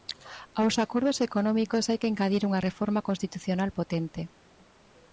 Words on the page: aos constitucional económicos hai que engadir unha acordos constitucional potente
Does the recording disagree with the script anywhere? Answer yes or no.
yes